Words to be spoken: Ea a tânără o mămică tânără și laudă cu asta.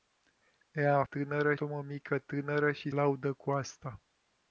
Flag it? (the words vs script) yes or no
no